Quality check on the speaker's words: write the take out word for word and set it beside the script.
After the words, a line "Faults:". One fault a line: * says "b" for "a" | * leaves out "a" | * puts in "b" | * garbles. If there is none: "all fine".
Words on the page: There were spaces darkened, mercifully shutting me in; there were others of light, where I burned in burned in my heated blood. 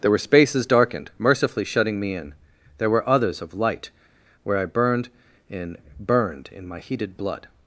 There were spaces darkened, mercifully shutting me in; there were others of light, where I burned in burned in my heated blood.
Faults:
all fine